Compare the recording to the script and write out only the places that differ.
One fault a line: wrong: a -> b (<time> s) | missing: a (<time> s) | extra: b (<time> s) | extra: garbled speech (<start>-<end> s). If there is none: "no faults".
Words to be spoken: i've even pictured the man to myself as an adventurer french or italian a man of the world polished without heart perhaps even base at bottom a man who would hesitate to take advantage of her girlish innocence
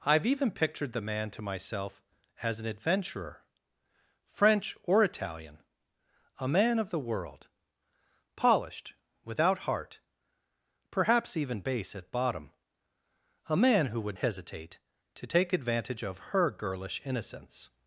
no faults